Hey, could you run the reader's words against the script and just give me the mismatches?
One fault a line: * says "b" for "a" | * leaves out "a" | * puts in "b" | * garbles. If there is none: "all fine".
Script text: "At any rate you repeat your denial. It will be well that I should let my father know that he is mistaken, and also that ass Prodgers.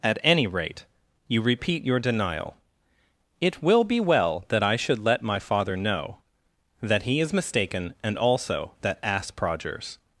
all fine